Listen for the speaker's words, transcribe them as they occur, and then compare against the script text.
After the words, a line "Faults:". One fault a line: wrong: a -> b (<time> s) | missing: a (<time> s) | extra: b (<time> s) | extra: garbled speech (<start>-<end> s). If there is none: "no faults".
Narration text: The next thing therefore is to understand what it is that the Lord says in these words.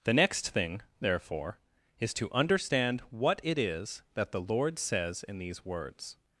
The next thing therefore is to understand what it is that the Lord says in these words.
Faults:
no faults